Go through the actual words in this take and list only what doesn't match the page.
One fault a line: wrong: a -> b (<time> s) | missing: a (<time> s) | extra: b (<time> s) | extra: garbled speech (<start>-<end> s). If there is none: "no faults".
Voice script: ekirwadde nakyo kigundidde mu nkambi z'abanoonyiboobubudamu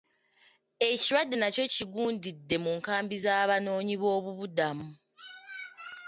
no faults